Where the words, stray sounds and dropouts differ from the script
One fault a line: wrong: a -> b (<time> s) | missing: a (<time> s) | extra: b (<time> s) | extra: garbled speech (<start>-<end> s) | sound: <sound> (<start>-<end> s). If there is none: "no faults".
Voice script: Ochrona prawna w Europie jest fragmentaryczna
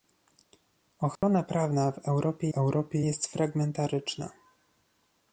sound: dropout (1.2-1.2 s)
extra: Europie (2.5 s)